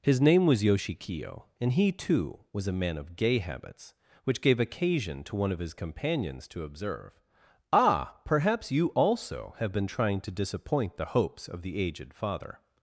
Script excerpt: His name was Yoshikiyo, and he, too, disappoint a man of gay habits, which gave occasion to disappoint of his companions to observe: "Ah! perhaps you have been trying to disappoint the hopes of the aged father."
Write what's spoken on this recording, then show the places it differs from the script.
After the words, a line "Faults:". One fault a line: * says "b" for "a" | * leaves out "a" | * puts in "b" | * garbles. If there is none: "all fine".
His name was Yoshikiyo, and he, too, was a man of gay habits, which gave occasion to one of his companions to observe: "Ah! perhaps you also have been trying to disappoint the hopes of the aged father."
Faults:
* says "was" for "disappoint"
* says "one" for "disappoint"
* puts in "also"